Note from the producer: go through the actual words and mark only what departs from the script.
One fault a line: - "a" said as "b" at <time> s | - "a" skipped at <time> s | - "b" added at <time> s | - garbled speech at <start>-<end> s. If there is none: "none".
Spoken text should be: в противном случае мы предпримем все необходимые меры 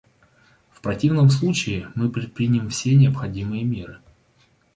none